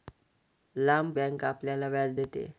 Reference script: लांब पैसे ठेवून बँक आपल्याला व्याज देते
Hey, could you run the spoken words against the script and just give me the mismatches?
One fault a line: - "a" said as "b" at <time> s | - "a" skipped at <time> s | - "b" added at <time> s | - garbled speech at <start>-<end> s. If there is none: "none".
- "पैसे ठेवून" skipped at 1.1 s